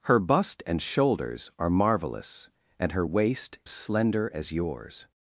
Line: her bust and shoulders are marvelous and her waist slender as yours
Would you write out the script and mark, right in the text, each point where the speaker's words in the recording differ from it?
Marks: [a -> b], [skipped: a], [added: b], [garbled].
her bust and shoulders are marvelous and her waist slender as yours